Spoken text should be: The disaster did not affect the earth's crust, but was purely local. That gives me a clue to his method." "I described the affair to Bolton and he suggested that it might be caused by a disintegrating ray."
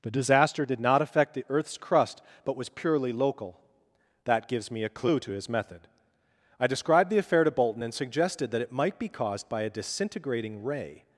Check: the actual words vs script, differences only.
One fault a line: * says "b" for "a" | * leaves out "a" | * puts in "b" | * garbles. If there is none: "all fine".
* leaves out "he"